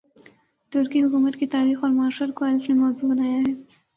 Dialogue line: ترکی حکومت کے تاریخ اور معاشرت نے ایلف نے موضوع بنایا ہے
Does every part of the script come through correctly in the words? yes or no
no